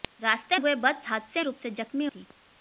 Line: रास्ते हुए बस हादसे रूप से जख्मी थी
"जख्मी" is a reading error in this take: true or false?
false